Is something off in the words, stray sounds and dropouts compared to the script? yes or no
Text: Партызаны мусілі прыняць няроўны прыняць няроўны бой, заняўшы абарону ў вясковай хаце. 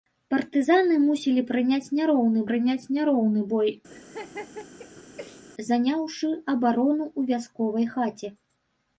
yes